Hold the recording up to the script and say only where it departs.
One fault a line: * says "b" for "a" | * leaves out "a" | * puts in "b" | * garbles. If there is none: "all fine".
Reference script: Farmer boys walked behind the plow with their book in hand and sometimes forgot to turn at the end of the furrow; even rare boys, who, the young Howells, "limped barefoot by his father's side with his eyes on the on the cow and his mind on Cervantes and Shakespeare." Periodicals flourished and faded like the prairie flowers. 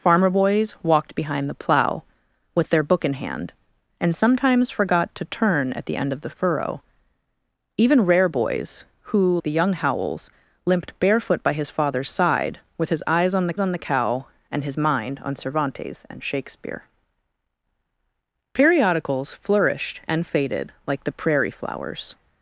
all fine